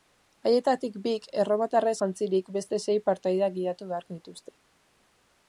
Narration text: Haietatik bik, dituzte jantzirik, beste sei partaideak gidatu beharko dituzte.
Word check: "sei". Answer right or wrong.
right